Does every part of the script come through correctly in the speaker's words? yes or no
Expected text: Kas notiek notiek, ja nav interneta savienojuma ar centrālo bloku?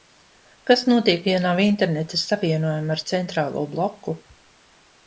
no